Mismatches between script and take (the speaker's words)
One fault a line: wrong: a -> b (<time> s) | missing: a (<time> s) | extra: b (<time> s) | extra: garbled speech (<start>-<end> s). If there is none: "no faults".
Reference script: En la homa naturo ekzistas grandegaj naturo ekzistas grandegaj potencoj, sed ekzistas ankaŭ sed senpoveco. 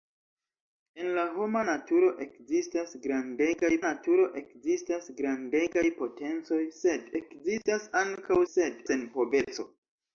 no faults